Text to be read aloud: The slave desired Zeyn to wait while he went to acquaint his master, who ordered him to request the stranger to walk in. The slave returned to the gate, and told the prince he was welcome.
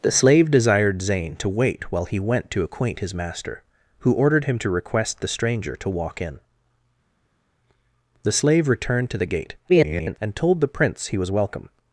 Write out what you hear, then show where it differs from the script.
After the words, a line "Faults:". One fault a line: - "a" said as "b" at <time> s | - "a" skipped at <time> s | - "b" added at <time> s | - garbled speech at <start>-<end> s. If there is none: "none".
The slave desired Zeyn to wait while he went to acquaint his master, who ordered him to request the stranger to walk in. The slave returned to the gate, [garbled] and told the prince he was welcome.
Faults:
- garbled speech at 9.7-10.2 s